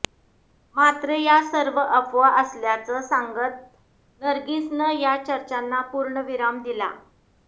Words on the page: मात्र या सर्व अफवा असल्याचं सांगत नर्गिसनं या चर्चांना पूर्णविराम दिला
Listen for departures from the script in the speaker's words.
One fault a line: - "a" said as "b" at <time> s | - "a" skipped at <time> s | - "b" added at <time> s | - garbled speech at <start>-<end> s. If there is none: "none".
none